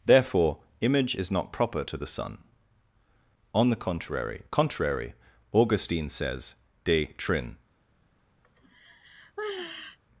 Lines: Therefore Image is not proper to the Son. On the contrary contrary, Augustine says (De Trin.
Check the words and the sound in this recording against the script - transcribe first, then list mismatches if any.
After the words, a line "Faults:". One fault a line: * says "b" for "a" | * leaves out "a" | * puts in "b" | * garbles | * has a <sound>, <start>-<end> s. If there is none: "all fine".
Therefore Image is not proper to the Son. On the contrary contrary, Augustine says (De Trin.
Faults:
* has a sigh, 8.4-10.0 s